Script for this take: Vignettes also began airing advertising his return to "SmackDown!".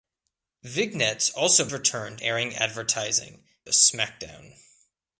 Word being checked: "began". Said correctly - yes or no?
no